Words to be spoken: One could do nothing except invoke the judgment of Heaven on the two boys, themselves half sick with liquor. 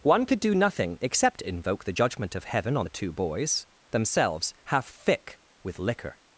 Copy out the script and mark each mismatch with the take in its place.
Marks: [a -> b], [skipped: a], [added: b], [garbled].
One could do nothing except invoke the judgment of Heaven on the two boys, themselves half [sick -> thick] with liquor.